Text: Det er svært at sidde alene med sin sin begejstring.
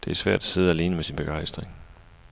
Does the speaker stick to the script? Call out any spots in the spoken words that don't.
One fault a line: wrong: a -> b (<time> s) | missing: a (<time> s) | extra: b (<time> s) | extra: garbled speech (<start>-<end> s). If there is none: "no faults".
missing: sin (1.2 s)